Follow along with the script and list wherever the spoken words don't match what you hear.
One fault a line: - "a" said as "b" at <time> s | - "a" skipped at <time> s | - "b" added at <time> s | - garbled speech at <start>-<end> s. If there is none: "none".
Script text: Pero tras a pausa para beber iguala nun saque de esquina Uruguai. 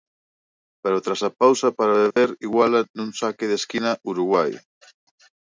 none